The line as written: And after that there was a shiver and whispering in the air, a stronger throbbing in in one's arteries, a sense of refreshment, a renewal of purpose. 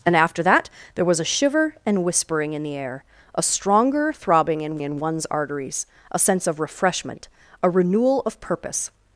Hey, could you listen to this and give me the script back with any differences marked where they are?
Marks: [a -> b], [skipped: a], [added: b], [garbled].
And after that there was a shiver and whispering in the air, a stronger throbbing in in one's arteries, a sense of refreshment, a renewal of purpose.